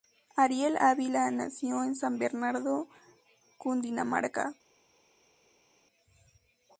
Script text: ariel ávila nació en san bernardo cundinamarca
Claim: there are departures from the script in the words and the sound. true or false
false